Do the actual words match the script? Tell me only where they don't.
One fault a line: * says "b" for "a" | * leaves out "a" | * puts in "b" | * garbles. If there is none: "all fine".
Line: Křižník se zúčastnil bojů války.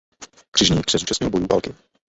all fine